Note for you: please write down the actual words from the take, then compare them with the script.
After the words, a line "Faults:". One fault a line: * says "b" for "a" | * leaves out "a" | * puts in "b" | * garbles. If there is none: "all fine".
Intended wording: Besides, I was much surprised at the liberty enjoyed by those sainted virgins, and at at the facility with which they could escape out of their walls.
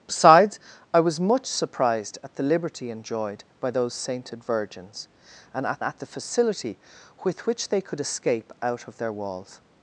Besides, I was much surprised at the liberty enjoyed by those sainted virgins, and at at the facility with which they could escape out of their walls.
Faults:
all fine